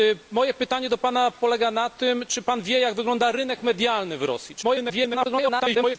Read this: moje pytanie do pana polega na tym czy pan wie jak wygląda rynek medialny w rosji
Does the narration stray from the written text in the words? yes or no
yes